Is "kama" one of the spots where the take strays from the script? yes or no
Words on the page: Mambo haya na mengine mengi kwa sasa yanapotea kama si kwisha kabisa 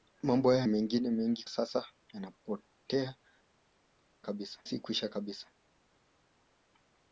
yes